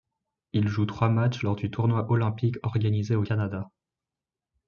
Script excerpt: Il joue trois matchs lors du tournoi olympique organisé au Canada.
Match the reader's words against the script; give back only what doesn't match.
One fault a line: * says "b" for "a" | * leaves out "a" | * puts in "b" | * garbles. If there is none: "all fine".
all fine